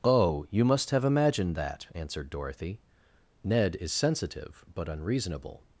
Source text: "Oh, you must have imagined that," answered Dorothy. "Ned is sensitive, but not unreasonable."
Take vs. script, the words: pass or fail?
fail